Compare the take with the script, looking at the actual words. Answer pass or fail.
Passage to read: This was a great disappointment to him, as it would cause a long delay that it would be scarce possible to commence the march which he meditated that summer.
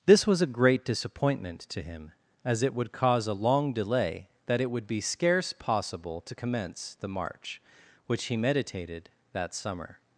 pass